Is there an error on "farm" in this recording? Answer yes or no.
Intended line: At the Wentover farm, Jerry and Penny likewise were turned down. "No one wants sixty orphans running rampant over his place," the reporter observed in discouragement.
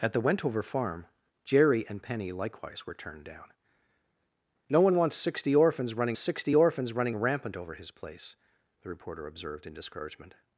no